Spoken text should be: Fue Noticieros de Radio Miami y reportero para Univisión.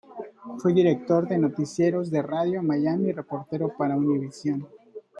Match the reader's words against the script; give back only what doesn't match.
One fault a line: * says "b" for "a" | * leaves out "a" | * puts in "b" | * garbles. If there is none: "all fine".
* puts in "director de"